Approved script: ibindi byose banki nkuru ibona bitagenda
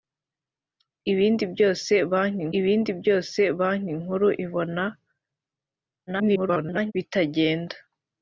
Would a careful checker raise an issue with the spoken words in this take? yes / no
yes